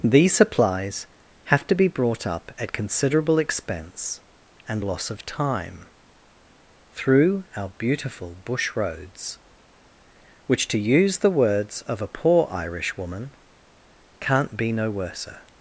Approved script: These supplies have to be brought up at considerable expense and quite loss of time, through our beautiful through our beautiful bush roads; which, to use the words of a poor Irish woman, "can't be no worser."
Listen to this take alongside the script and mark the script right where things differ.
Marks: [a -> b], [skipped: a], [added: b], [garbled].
These supplies have to be brought up at considerable expense and [skipped: quite] loss of time, through our beautiful [skipped: through our beautiful] bush roads; which, to use the words of a poor Irish woman, "can't be no worser."